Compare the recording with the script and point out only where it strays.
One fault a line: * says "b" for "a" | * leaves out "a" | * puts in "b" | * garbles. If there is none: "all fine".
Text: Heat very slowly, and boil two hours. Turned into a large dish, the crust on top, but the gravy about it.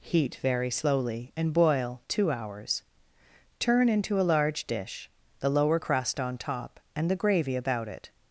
* says "Turn" for "Turned"
* puts in "lower"
* says "and" for "but"